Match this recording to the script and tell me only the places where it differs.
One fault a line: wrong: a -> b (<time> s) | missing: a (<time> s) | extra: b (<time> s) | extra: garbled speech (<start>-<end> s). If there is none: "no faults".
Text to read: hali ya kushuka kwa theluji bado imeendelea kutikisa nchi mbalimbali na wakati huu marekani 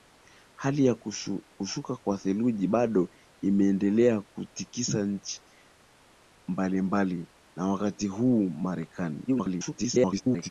extra: garbled speech (9.3-10.5 s)